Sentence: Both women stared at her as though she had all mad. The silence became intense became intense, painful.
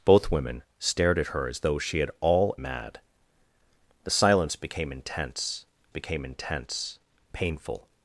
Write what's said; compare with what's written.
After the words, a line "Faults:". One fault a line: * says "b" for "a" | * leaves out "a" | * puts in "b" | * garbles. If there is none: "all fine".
Both women stared at her as though she had all mad. The silence became intense became intense, painful.
Faults:
all fine